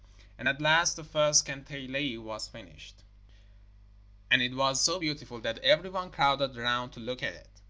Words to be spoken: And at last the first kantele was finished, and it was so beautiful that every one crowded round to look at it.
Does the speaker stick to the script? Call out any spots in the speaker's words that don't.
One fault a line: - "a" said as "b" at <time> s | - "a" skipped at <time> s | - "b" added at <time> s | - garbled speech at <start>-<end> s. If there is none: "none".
none